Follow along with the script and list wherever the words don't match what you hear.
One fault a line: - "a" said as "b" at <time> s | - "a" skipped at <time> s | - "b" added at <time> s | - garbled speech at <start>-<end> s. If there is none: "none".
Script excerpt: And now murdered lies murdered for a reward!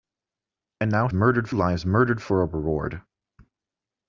none